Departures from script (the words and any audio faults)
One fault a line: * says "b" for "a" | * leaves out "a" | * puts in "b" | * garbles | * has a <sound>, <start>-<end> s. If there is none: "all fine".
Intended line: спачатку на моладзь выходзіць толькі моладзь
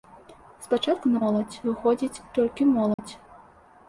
* has a dropout, 2.9-3.0 s